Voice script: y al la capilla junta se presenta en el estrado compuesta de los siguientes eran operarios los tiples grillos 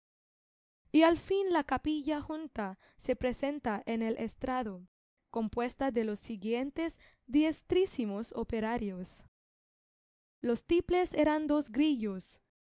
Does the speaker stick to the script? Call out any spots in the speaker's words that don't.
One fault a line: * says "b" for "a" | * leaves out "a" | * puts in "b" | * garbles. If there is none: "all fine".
* puts in "fin"
* says "diestrísimos" for "eran"
* puts in "eran dos"